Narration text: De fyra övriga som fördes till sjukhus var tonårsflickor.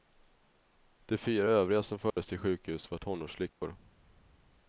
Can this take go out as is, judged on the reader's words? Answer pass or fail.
pass